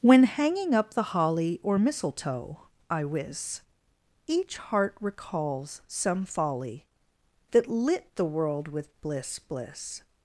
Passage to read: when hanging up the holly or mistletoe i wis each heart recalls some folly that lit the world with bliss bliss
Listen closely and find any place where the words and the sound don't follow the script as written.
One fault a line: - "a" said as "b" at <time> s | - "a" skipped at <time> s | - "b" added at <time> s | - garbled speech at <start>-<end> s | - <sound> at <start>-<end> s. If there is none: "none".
none